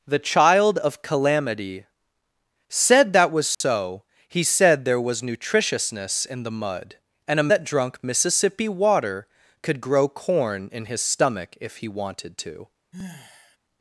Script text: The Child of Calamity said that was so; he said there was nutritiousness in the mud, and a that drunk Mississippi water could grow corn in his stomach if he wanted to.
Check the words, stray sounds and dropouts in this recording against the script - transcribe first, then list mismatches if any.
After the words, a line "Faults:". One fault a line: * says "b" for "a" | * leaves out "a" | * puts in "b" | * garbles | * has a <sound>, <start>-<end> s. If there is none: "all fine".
The Child of Calamity said that was so; he said there was nutritiousness in the mud, and a that drunk Mississippi water could grow corn in his stomach if he wanted to.
Faults:
* has a dropout, 3.5-3.6 s
* has a sigh, 12.9-13.6 s